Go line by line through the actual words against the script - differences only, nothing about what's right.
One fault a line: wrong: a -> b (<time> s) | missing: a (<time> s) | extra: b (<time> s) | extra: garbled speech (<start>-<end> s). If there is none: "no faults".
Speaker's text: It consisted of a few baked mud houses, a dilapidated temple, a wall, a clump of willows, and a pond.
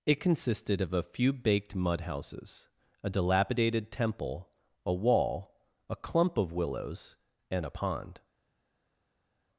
no faults